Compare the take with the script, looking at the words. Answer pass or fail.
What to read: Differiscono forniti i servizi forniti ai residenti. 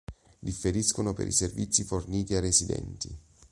fail